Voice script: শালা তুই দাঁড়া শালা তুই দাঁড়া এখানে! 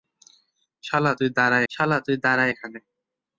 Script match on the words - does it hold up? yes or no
yes